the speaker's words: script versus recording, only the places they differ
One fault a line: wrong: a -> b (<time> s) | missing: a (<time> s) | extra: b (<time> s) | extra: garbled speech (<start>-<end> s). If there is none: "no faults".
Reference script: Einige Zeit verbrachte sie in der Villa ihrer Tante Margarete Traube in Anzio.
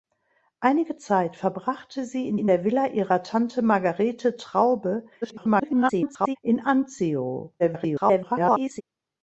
extra: in (2.4 s)
extra: garbled speech (5.2-6.4 s)
extra: garbled speech (7.6-8.8 s)